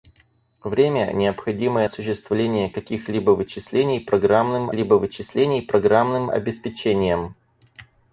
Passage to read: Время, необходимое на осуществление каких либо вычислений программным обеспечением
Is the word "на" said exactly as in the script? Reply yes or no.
no